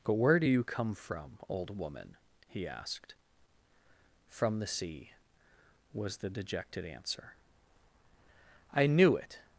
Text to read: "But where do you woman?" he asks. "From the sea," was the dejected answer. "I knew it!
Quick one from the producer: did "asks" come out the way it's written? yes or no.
no